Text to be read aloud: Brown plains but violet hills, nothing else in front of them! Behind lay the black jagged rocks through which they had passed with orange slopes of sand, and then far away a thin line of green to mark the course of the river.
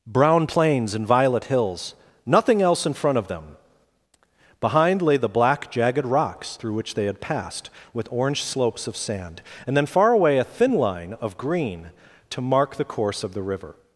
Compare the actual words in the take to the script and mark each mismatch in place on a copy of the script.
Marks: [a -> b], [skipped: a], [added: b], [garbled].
Brown plains [but -> and] violet hills, nothing else in front of them! Behind lay the black jagged rocks through which they had passed with orange slopes of sand, and then far away a thin line of green to mark the course of the river.